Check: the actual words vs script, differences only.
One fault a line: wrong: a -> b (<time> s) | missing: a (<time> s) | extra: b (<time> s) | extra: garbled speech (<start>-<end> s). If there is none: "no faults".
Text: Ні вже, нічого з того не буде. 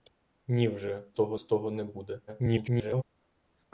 wrong: нічого -> того (1.1 s)
extra: garbled speech (2.3-3.0 s)